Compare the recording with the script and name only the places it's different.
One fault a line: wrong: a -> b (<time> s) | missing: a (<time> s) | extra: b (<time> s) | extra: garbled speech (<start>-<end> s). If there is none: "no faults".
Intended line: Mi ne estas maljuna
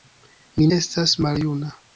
missing: ne (0.7 s)